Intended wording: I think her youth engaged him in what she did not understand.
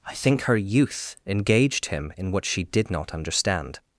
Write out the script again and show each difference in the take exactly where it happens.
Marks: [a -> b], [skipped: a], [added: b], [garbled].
I think her youth engaged him in what she did not understand.